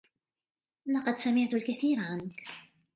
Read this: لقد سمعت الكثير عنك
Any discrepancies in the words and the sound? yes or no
no